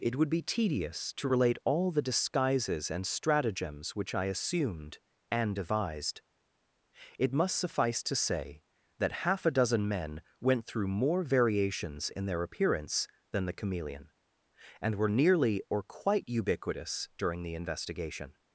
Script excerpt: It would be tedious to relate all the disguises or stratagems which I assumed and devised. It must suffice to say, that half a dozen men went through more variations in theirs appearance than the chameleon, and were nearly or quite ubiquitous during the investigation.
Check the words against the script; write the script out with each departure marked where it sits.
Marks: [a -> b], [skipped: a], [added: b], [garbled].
It would be tedious to relate all the disguises [or -> and] stratagems which I assumed and devised. It must suffice to say, that half a dozen men went through more variations in [theirs -> their] appearance than the chameleon, and were nearly or quite ubiquitous during the investigation.